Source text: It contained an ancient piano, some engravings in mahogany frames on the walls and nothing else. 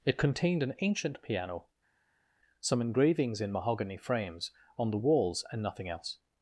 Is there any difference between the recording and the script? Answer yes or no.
no